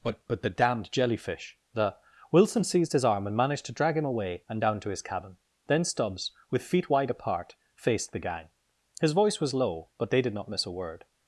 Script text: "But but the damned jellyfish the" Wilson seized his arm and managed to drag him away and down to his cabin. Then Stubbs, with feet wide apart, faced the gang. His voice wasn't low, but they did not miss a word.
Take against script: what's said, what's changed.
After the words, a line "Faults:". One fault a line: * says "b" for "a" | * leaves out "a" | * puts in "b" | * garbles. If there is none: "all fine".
"But but the damned jellyfish the" Wilson seized his arm and managed to drag him away and down to his cabin. Then Stubbs, with feet wide apart, faced the gang. His voice was low, but they did not miss a word.
Faults:
* says "was" for "wasn't"